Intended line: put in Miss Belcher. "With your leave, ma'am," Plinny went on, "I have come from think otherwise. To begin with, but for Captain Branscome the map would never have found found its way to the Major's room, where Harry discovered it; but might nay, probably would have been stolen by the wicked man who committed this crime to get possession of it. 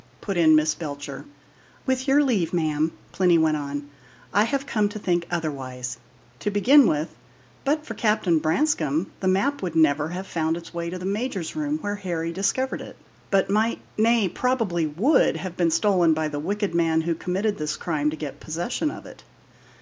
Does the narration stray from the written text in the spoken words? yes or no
yes